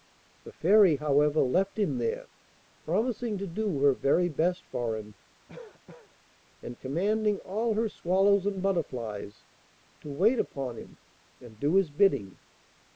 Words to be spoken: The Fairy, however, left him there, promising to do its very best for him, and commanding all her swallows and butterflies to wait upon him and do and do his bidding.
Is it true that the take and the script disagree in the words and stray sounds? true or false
true